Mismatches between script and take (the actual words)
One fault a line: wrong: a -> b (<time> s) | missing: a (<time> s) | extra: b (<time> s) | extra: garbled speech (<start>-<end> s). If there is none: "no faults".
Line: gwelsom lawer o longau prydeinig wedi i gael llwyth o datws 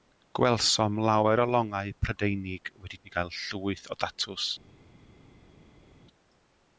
no faults